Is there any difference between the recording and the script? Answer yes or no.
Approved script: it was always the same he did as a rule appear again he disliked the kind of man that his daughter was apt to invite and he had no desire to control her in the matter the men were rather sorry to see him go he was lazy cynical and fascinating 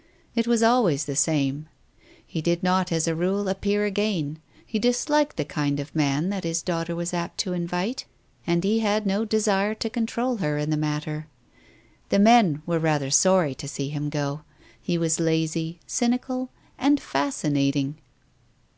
yes